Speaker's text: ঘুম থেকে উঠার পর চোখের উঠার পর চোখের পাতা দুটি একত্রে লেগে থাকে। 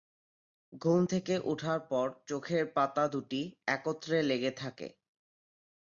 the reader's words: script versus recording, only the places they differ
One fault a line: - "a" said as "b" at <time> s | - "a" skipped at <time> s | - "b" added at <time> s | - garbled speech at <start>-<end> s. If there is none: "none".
- "উঠার পর চোখের" skipped at 2.6 s